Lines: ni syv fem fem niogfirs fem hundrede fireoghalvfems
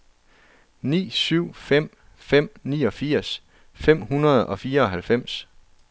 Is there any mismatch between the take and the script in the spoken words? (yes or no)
yes